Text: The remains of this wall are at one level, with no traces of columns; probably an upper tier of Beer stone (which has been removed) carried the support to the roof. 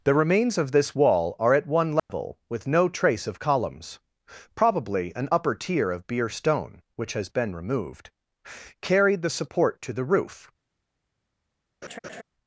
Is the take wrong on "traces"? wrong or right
wrong